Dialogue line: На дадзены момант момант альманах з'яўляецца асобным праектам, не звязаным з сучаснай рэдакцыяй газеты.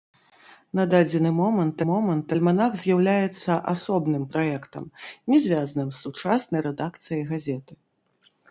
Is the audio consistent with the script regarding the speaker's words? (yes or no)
yes